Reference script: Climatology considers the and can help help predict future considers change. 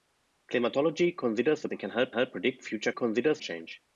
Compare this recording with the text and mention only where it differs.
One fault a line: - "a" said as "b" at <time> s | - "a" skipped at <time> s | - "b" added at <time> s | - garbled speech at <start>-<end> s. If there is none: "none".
none